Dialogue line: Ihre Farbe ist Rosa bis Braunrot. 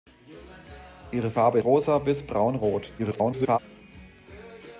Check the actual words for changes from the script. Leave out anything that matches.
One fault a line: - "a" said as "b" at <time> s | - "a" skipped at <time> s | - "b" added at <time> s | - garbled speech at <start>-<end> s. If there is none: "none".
- "ist" skipped at 1.6 s
- garbled speech at 3.0-3.6 s